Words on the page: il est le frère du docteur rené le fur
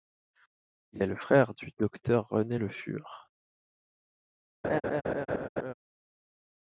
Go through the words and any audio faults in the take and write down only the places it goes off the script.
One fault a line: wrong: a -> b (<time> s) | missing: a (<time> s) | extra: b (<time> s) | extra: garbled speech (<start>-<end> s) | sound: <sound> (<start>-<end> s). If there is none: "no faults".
sound: laugh (4.6-5.7 s)